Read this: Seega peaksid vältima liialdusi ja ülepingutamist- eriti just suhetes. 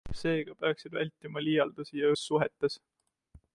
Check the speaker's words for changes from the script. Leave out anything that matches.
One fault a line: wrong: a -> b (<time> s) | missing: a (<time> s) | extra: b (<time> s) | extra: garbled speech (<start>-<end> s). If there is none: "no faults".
missing: ülepingutamist eriti (2.1 s)